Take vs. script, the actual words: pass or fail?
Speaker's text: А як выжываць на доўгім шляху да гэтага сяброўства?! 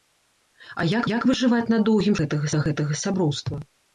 fail